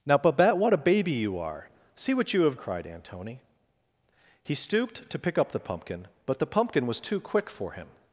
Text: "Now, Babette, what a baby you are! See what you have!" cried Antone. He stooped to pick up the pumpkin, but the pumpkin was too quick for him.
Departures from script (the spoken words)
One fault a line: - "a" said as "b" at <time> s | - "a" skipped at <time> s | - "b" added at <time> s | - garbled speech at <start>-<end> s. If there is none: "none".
none